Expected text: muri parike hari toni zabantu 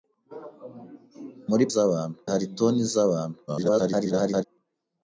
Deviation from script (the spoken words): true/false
true